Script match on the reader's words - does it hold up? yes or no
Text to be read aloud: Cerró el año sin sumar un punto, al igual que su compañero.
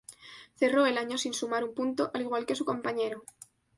yes